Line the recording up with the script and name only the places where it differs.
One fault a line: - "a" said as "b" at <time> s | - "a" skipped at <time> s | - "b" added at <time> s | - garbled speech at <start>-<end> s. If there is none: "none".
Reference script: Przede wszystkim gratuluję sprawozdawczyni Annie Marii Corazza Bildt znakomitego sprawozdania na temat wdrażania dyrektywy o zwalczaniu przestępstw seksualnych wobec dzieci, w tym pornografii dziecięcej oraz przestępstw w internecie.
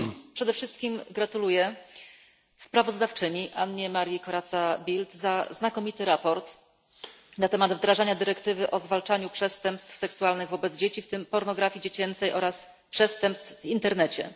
none